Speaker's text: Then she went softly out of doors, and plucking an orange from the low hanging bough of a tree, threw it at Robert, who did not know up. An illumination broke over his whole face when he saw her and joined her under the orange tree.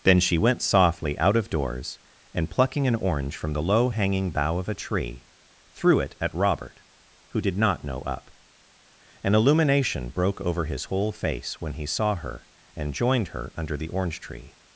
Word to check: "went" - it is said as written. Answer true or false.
true